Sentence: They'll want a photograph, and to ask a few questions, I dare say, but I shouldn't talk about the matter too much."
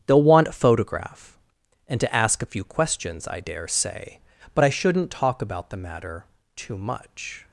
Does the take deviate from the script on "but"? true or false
false